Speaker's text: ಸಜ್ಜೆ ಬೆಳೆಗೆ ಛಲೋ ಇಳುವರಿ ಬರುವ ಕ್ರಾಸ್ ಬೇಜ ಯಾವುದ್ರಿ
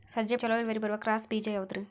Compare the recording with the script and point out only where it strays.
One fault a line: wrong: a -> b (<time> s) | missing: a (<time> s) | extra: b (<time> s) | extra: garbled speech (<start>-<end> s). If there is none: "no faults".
missing: ಬೆಳೆಗೆ (0.4 s)